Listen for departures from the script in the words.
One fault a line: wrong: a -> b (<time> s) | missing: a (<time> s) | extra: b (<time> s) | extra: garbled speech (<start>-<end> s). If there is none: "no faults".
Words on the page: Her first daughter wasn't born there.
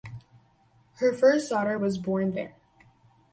wrong: wasn't -> was (1.8 s)